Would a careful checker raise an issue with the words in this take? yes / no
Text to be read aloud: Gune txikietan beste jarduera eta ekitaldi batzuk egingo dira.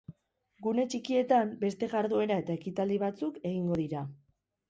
no